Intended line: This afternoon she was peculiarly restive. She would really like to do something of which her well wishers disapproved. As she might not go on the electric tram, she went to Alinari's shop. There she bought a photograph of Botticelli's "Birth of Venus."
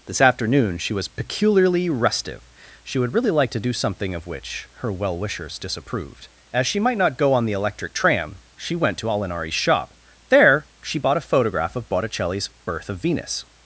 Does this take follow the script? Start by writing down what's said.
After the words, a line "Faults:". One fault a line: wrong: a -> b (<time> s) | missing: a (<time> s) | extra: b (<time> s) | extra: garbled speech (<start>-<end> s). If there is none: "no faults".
This afternoon she was peculiarly restive. She would really like to do something of which her well wishers disapproved. As she might not go on the electric tram, she went to Alinari's shop. There she bought a photograph of Botticelli's "Birth of Venus."
Faults:
no faults